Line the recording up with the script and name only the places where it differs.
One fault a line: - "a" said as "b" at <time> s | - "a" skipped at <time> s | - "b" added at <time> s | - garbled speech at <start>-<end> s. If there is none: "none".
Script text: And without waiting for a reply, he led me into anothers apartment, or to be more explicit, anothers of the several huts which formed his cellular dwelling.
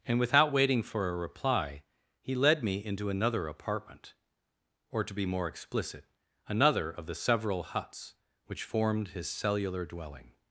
- "anothers" said as "another" at 3.1 s
- "anothers" said as "another" at 6.5 s